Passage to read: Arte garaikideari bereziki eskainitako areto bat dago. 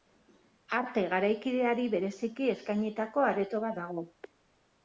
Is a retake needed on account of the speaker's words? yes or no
no